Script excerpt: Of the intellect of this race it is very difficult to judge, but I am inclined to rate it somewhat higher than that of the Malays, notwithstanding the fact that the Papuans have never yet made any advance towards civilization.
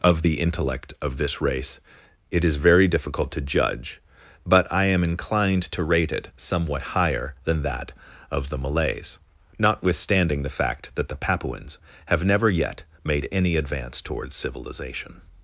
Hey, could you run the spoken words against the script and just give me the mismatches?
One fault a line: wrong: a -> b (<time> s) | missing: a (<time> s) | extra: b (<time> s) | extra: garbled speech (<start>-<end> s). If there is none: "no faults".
no faults